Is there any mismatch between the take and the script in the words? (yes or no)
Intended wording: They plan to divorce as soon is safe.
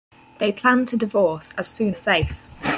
no